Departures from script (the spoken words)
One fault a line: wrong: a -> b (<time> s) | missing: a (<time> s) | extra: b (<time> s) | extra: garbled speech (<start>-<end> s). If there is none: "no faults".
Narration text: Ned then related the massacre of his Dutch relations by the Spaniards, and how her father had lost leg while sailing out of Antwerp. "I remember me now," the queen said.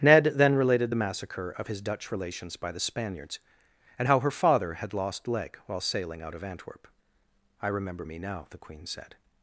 no faults